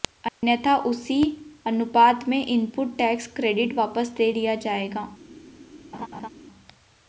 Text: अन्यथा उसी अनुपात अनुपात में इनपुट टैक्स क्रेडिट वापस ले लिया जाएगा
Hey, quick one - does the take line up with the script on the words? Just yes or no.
no